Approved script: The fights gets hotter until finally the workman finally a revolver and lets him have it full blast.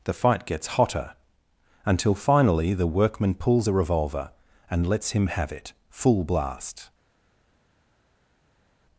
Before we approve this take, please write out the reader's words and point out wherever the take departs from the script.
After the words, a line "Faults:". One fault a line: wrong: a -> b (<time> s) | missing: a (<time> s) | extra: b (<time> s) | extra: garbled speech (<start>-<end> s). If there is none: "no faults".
The fight gets hotter until finally the workman pulls a revolver and lets him have it full blast.
Faults:
wrong: fights -> fight (0.1 s)
wrong: finally -> pulls (3.4 s)